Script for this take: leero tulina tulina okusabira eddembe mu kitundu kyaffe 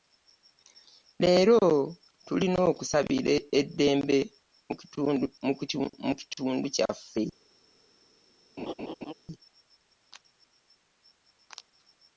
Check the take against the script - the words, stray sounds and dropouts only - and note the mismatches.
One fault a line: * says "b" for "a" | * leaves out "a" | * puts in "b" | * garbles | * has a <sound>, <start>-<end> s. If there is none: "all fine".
* leaves out "tulina"
* has a laugh, 8.6-9.1 s